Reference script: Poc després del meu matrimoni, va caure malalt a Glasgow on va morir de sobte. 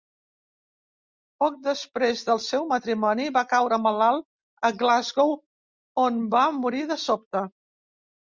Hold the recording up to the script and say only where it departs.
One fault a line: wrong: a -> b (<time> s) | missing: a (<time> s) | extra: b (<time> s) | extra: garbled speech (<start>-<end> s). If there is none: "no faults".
wrong: meu -> seu (2.5 s)